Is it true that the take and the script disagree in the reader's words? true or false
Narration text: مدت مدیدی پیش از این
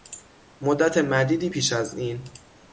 false